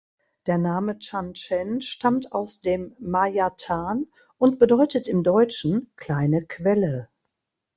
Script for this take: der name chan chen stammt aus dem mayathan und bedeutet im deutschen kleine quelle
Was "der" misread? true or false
false